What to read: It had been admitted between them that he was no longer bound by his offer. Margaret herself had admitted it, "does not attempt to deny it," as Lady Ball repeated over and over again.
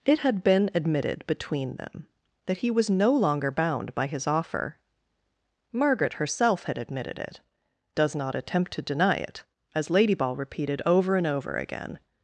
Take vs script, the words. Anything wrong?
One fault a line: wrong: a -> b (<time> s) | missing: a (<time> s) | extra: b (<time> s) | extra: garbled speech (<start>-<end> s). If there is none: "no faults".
no faults